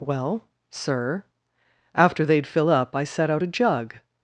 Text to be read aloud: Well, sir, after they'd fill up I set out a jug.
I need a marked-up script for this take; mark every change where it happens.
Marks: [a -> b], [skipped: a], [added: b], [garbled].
Well, sir, after they'd fill up I set out a jug.